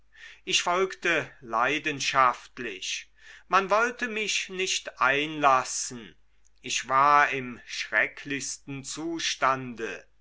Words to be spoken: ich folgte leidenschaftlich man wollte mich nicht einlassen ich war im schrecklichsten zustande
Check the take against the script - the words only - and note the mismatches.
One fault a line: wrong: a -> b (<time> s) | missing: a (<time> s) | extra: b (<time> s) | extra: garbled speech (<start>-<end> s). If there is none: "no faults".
no faults